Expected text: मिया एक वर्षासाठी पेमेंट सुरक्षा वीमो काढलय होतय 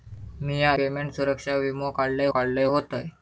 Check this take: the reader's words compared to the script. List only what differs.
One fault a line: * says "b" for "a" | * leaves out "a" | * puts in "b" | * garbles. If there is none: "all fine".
* leaves out "एक वर्षासाठी"
* puts in "काढलय"